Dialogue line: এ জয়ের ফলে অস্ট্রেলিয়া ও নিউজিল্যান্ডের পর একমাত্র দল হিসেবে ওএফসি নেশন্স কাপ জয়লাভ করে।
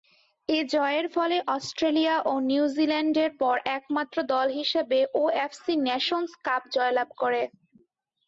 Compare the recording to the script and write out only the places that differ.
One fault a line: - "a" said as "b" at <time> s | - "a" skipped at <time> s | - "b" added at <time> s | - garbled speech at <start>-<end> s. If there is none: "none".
none